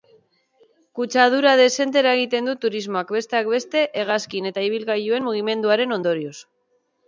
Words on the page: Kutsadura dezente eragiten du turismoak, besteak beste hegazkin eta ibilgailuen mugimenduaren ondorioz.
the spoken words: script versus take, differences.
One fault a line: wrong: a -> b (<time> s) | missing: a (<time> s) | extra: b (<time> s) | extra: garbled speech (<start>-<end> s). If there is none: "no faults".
no faults